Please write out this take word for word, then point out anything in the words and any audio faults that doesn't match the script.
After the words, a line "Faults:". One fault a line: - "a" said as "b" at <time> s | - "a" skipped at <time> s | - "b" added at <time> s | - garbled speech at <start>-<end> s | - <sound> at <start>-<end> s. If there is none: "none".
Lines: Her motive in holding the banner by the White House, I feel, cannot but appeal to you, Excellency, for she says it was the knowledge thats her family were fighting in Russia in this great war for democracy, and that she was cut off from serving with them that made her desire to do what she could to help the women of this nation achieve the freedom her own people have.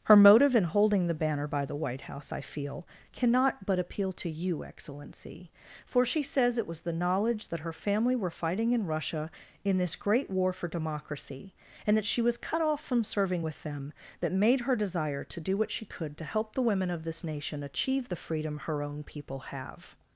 Her motive in holding the banner by the White House, I feel, cannot but appeal to you, Excellency, for she says it was the knowledge that her family were fighting in Russia in this great war for democracy, and that she was cut off from serving with them that made her desire to do what she could to help the women of this nation achieve the freedom her own people have.
Faults:
- "thats" said as "that" at 7.5 s